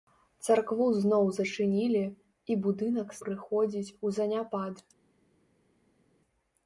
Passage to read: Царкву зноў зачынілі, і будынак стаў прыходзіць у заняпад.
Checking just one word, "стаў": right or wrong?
wrong